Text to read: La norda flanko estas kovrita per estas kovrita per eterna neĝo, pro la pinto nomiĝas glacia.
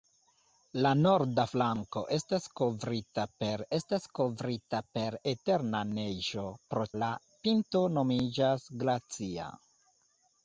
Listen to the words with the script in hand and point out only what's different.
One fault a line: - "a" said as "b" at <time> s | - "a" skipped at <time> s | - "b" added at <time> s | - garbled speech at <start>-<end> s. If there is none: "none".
none